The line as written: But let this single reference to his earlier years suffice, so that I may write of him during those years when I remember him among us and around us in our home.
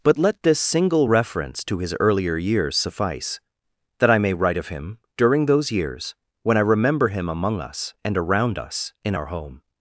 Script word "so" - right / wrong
wrong